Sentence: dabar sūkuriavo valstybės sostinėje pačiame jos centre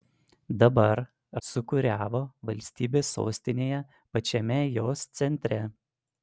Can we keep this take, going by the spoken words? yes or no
yes